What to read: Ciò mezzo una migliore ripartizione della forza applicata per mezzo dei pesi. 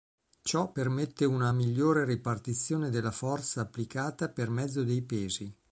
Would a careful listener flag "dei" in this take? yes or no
no